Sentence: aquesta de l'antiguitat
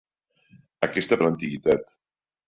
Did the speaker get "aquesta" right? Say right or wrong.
right